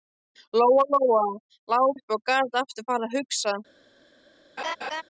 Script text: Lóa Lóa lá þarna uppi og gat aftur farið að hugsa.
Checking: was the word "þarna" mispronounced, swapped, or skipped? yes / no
yes